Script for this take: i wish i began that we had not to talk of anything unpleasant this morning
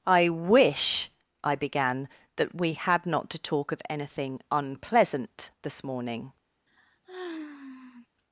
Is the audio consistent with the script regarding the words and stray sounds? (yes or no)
no